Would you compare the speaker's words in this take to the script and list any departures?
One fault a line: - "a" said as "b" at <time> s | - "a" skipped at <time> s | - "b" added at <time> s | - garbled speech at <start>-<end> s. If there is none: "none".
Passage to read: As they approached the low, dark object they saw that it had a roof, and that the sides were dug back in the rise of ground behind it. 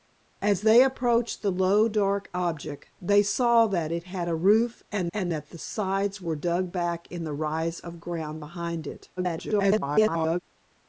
- "and" added at 5.1 s
- garbled speech at 9.2-10.4 s